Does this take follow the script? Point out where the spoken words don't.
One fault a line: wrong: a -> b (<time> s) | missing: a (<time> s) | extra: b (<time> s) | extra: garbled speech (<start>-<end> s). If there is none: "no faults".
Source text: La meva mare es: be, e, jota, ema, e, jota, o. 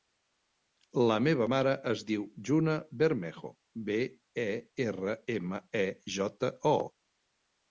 extra: diu Juna Bermejo (2.1 s)
wrong: jota -> erra (4.9 s)